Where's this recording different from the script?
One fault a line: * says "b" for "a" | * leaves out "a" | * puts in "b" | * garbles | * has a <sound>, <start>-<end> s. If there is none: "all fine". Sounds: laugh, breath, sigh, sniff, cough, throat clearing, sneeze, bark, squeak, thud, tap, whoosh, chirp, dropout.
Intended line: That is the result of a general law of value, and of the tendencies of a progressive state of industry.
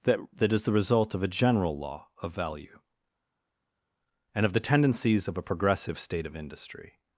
* puts in "that"